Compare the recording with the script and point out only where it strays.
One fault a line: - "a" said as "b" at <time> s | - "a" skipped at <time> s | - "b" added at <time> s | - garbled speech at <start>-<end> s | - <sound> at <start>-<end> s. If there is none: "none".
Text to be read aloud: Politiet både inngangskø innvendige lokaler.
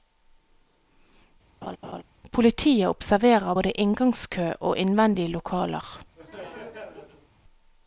- laugh at 1.6-2.0 s
- "observerer" added at 2.9 s
- "og" added at 4.6 s
- laugh at 6.2-7.3 s